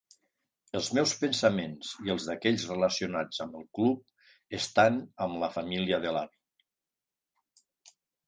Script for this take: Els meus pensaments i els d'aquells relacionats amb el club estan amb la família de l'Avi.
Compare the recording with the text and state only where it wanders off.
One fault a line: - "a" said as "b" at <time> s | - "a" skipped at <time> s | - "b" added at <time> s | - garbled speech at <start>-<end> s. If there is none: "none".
none